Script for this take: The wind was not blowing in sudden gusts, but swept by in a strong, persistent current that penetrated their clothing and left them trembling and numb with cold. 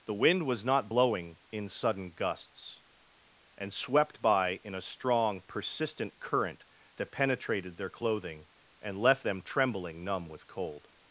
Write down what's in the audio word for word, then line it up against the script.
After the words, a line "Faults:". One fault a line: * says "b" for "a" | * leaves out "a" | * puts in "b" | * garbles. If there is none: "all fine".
The wind was not blowing in sudden gusts, and swept by in a strong, persistent current that penetrated their clothing and left them trembling numb with cold.
Faults:
* says "and" for "but"
* leaves out "and"